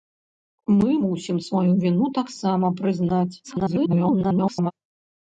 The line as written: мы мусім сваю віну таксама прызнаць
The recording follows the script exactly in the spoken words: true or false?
false